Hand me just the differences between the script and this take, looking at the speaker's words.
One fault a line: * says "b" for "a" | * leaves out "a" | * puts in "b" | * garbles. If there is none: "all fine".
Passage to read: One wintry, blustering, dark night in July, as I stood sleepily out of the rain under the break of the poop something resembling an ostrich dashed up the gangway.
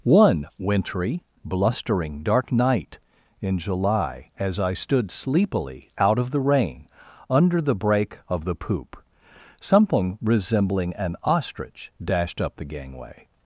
all fine